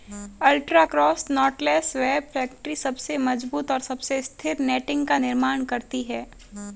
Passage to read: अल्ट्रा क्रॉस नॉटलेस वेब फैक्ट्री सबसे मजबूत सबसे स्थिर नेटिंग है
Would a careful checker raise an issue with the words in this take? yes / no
yes